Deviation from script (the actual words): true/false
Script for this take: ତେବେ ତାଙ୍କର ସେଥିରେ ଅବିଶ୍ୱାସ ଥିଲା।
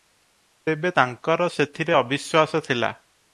false